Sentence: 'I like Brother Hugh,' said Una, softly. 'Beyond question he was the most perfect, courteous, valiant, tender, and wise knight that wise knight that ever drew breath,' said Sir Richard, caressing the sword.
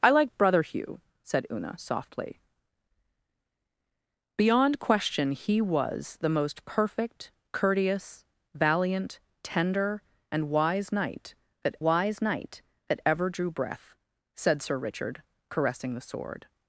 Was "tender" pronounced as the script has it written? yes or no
yes